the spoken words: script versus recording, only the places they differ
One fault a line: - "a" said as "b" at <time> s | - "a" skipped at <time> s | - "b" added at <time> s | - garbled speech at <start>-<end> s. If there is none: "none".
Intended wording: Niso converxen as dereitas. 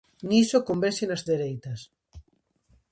none